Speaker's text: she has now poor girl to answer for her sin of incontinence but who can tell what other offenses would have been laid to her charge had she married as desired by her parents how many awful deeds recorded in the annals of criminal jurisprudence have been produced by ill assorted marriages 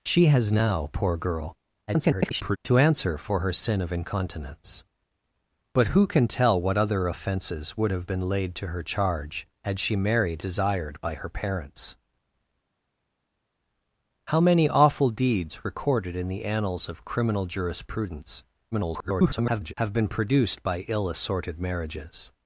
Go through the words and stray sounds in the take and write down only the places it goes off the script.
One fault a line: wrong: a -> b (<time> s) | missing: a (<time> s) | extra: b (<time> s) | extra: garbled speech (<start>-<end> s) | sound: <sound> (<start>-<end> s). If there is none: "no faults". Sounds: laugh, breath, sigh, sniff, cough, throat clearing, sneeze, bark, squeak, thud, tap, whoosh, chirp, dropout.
extra: garbled speech (1.9-2.6 s)
missing: as (10.4 s)
extra: garbled speech (18.7-19.7 s)